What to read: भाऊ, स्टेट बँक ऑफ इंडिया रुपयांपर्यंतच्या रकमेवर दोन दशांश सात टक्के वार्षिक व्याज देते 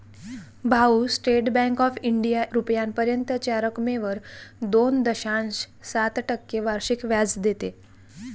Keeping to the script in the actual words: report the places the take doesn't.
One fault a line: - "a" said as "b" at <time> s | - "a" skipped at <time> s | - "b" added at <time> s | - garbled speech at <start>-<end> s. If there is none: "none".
none